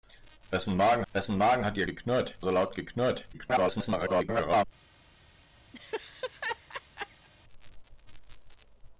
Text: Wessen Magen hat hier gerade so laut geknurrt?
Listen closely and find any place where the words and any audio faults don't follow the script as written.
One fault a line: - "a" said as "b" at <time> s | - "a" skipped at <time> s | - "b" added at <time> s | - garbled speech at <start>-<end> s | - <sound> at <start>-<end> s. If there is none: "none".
- "wessen Magen" added at 1.1 s
- "gerade" said as "geknurrt" at 1.9 s
- garbled speech at 3.3-4.6 s
- laugh at 5.7-7.3 s